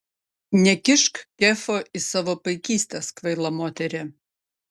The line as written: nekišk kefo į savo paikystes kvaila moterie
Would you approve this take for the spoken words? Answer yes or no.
yes